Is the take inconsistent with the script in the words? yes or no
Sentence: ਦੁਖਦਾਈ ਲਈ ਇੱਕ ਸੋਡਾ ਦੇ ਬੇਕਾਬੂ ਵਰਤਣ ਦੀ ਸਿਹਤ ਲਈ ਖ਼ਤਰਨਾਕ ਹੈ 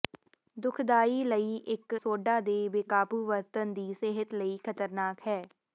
no